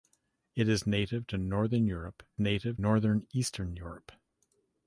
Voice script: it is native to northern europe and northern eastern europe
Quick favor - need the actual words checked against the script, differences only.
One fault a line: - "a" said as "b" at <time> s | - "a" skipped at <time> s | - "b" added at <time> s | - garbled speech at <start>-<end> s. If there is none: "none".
- "and" said as "native" at 2.4 s